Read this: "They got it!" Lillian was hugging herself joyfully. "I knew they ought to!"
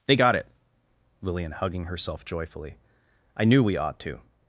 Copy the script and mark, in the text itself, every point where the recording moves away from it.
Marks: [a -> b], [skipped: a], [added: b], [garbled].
"They got it!" Lillian [skipped: was] hugging herself joyfully. "I knew [they -> we] ought to!"